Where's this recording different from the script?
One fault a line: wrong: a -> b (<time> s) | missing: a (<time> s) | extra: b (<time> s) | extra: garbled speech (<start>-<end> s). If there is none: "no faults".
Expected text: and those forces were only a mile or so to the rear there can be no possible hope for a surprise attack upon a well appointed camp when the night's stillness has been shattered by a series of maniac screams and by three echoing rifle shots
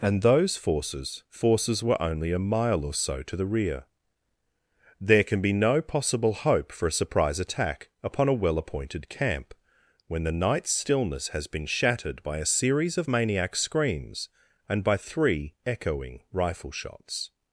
extra: forces (1.3 s)